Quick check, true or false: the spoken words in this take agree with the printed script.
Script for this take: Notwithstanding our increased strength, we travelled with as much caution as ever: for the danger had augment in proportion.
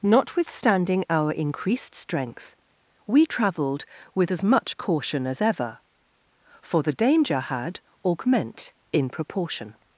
true